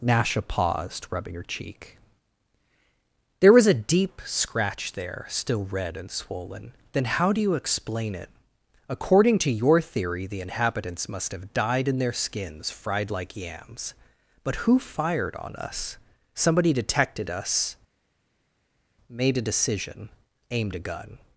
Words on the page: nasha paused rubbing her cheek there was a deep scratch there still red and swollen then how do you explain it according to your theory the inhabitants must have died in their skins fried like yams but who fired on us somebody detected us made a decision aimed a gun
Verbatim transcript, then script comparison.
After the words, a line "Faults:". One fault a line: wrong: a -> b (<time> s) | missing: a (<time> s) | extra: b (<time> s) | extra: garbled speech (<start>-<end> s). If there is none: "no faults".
nasha paused rubbing her cheek there was a deep scratch there still red and swollen then how do you explain it according to your theory the inhabitants must have died in their skins fried like yams but who fired on us somebody detected us made a decision aimed a gun
Faults:
no faults